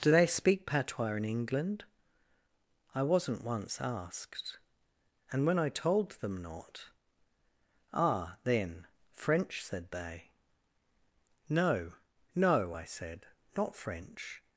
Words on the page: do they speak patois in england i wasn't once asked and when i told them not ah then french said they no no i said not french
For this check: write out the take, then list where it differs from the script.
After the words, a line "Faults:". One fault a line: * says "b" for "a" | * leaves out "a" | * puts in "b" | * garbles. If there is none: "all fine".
do they speak patois in england i wasn't once asked and when i told them not ah then french said they no no i said not french
Faults:
all fine